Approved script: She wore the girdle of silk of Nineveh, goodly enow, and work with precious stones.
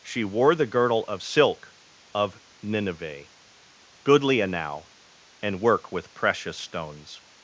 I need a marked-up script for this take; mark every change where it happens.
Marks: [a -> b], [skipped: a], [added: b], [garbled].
She wore the girdle of silk of Nineveh, goodly enow, and work with precious stones.